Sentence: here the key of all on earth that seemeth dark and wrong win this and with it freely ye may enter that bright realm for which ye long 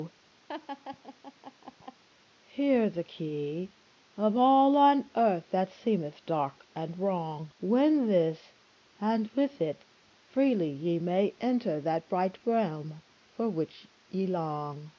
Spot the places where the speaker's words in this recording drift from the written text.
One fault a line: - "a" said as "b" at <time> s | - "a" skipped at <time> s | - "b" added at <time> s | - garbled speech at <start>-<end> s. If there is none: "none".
none